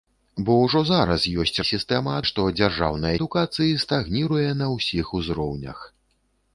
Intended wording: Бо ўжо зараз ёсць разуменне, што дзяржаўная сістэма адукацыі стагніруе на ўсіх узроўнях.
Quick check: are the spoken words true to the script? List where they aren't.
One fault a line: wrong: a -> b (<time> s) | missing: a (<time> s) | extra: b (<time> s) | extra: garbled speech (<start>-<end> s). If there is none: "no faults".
wrong: разуменне -> сістэма (1.7 s)
missing: сістэма (3.1 s)